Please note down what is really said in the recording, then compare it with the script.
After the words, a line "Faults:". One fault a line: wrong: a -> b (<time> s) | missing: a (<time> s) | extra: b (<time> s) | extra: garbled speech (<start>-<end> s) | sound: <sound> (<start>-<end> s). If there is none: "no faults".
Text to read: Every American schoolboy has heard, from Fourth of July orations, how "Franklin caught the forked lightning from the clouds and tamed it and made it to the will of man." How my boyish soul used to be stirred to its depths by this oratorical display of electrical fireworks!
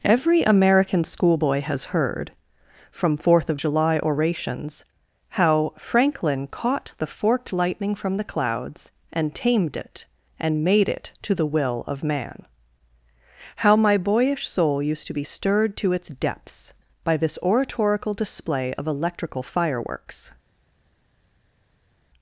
Every American schoolboy has heard, from Fourth of July orations, how "Franklin caught the forked lightning from the clouds and tamed it and made it to the will of man." How my boyish soul used to be stirred to its depths by this oratorical display of electrical fireworks!
Faults:
no faults